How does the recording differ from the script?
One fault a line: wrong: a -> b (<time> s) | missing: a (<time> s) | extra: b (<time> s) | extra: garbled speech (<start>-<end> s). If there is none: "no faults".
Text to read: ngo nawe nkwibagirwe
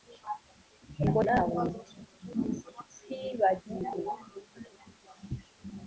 no faults